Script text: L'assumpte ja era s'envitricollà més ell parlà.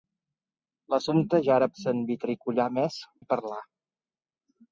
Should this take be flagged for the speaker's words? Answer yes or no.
no